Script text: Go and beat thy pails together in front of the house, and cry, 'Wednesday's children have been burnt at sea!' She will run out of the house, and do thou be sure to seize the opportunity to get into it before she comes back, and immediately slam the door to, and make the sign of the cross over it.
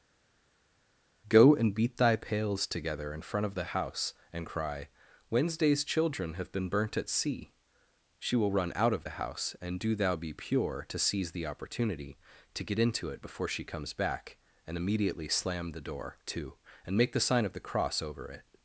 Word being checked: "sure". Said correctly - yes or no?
no